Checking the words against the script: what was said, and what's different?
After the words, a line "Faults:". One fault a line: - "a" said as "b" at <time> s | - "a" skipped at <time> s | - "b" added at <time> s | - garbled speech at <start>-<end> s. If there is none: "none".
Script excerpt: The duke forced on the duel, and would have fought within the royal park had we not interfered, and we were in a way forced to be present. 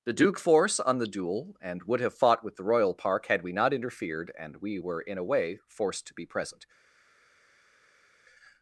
The duke force on the duel, and would have fought with the royal park had we not interfered, and we were in a way forced to be present.
Faults:
- "forced" said as "force" at 0.4 s
- "within" said as "with" at 2.4 s